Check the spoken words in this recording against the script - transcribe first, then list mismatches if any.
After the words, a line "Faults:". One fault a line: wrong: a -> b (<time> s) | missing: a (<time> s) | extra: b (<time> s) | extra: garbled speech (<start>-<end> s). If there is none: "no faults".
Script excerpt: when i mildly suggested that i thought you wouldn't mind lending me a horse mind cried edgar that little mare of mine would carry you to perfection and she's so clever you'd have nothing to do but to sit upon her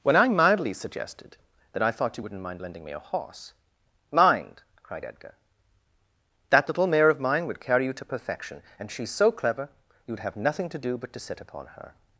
when i mildly suggested that i thought you wouldn't mind lending me a horse mind cried edgar that little mare of mine would carry you to perfection and she's so clever you'd have nothing to do but to sit upon her
Faults:
no faults